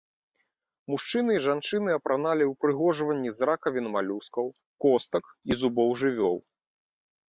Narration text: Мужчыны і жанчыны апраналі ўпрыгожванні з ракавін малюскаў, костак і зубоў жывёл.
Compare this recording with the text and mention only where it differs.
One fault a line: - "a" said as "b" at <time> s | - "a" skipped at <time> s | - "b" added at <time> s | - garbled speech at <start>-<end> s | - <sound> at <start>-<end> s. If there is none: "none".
none